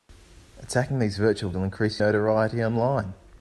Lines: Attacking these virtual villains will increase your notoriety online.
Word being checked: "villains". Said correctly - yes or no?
no